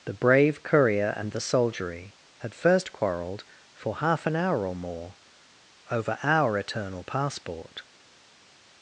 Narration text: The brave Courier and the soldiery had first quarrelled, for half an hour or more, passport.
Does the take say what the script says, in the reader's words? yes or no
no